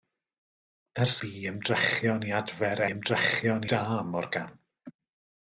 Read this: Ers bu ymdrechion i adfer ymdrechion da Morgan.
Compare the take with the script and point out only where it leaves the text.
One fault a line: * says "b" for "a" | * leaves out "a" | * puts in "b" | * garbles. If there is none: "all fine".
all fine